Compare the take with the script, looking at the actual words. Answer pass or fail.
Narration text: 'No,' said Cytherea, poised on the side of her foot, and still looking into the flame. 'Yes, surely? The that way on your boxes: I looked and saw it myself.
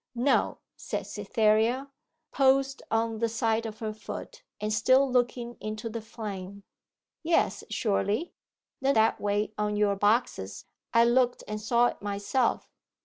pass